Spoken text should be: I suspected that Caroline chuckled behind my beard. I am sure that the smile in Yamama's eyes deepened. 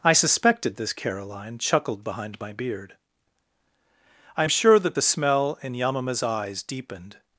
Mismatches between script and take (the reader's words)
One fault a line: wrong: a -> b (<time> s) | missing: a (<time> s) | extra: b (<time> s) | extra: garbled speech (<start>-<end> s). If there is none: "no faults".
wrong: that -> this (0.8 s)
wrong: smile -> smell (5.0 s)